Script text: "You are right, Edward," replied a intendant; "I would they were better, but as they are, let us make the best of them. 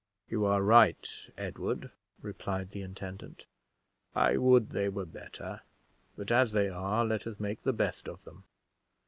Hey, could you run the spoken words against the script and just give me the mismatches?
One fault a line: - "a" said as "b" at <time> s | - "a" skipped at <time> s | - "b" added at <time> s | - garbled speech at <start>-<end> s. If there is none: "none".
- "a" said as "the" at 2.7 s